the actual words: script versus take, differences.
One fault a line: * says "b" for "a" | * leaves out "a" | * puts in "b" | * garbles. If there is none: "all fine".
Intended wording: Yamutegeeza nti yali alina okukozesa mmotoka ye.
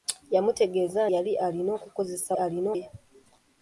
* leaves out "nti"
* says "alina" for "mmotoka"